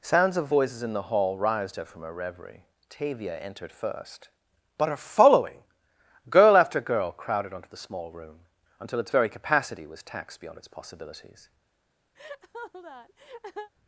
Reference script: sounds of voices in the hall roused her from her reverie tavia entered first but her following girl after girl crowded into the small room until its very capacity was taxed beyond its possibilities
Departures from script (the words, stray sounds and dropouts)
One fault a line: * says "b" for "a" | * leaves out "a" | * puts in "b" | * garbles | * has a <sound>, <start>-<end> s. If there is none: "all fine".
* says "onto" for "into"
* has a laugh, 12.1-13.7 s